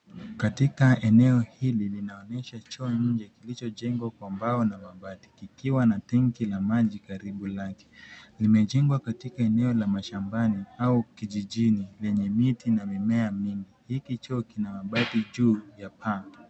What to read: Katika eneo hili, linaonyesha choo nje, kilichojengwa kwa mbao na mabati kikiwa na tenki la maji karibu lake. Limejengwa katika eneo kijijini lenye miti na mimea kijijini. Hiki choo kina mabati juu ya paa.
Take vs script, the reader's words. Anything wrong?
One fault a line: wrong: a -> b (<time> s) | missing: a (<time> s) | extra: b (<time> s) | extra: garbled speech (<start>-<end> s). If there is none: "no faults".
extra: la mashambani au (9.7 s)
wrong: kijijini -> mingi (13.3 s)